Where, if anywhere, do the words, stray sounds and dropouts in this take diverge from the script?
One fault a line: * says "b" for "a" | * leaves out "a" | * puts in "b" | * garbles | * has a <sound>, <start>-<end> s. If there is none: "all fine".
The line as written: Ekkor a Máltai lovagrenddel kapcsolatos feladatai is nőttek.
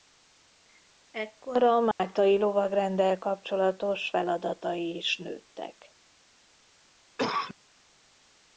* has a dropout, 1.9-2.0 s
* has a cough, 7.2-7.5 s